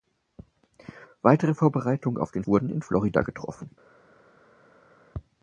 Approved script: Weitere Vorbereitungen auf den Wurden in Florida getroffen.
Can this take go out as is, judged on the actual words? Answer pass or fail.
pass